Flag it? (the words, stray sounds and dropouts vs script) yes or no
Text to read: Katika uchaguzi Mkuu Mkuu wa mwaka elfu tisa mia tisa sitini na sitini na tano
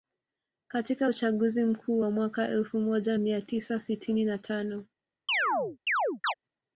yes